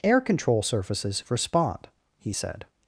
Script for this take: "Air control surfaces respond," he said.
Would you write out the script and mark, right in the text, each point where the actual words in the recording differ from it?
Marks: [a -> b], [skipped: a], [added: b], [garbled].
"Air control surfaces respond," he said.